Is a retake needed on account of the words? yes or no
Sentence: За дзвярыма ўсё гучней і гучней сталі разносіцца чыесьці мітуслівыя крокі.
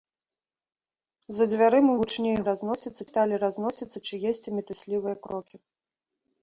yes